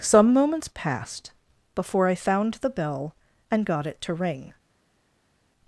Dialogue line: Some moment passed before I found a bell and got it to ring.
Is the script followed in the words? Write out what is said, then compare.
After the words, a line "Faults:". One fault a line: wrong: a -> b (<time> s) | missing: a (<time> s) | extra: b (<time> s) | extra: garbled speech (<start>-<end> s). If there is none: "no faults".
Some moments passed before I found the bell and got it to ring.
Faults:
wrong: moment -> moments (0.3 s)
wrong: a -> the (2.5 s)